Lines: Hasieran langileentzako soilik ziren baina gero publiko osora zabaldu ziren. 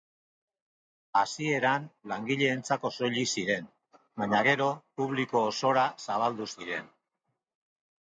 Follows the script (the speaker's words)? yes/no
yes